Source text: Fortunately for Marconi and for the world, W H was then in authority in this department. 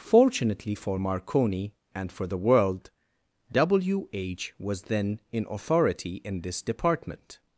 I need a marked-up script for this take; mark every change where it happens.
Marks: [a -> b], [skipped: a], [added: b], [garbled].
Fortunately for Marconi and for the world, W H was then in authority in this department.